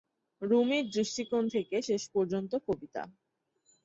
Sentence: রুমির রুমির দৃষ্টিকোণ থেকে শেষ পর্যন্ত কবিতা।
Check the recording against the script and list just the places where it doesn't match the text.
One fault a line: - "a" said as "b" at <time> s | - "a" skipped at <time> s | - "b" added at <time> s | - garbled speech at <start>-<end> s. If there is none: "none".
- "রুমির" skipped at 0.9 s